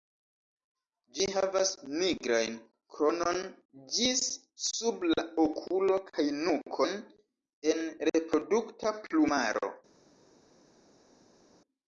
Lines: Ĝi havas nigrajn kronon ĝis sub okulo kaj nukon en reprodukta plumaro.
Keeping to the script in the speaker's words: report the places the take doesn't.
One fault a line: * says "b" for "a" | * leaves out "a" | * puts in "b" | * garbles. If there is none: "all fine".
* puts in "la"